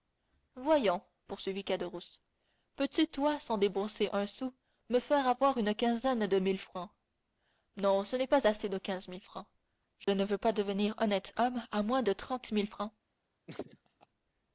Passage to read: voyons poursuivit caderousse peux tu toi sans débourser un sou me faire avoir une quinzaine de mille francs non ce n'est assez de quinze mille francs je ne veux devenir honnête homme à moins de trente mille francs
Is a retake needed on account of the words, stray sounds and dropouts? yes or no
yes